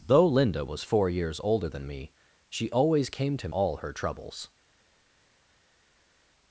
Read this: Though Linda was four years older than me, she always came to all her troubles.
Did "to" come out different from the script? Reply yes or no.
no